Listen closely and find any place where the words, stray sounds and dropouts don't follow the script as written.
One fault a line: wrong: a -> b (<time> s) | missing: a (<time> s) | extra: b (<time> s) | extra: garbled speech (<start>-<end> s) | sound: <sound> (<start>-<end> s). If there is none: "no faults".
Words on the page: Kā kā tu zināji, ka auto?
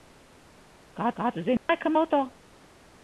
sound: dropout (1.6-1.7 s)